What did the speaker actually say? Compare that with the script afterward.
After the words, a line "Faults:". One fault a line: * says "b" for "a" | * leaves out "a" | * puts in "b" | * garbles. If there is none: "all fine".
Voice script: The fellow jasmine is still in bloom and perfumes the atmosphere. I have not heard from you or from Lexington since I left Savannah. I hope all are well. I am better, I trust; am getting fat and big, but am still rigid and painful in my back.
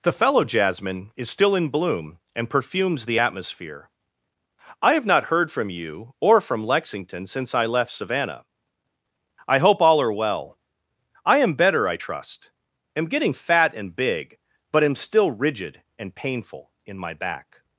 The fellow jasmine is still in bloom and perfumes the atmosphere. I have not heard from you or from Lexington since I left Savannah. I hope all are well. I am better, I trust; am getting fat and big, but am still rigid and painful in my back.
Faults:
all fine